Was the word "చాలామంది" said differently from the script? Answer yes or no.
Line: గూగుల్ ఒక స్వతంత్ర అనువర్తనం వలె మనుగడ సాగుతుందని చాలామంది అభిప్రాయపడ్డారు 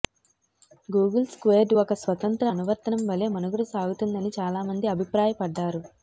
no